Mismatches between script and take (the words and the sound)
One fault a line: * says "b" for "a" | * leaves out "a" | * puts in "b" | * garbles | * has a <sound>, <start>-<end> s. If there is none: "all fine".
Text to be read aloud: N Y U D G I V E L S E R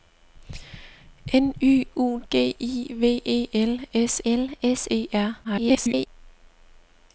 * leaves out "D"
* puts in "L S"
* garbles